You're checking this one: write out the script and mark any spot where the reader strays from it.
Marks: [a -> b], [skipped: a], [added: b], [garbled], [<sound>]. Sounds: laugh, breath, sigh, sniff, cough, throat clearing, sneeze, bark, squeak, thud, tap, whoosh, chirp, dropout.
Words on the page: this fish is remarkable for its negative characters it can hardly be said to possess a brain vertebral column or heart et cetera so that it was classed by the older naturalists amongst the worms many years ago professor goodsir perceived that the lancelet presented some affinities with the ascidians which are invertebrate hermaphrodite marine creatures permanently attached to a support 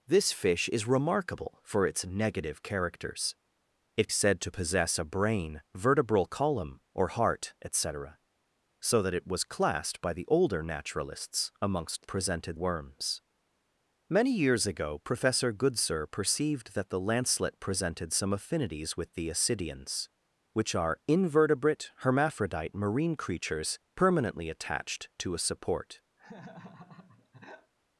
this fish is remarkable for its negative characters it [skipped: can hardly be] said to possess a brain vertebral column or heart et cetera so that it was classed by the older naturalists amongst [the -> presented] worms many years ago professor goodsir perceived that the lancelet presented some affinities with the ascidians which are invertebrate hermaphrodite marine creatures permanently attached to a support [laugh]